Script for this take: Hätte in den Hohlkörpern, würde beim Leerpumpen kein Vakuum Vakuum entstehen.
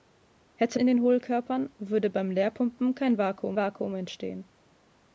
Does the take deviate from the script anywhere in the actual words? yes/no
no